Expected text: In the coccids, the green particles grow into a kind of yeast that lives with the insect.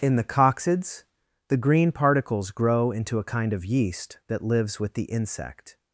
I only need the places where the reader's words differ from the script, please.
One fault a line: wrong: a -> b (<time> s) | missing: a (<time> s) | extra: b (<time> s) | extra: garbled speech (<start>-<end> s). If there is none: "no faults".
no faults